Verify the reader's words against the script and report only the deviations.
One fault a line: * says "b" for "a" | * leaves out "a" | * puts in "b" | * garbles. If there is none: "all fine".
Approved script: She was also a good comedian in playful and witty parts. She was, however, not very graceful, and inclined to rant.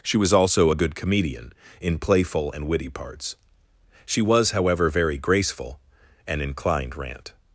* leaves out "not"
* leaves out "to"